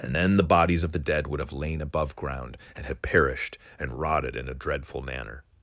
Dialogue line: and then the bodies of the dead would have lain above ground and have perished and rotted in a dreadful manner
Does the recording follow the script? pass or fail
fail